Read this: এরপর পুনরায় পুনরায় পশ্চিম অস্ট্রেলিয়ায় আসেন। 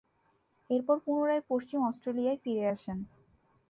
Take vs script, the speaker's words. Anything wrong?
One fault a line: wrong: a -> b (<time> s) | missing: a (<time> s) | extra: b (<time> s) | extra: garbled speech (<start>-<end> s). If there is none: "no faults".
missing: পুনরায় (1.4 s)
extra: ফিরে (2.4 s)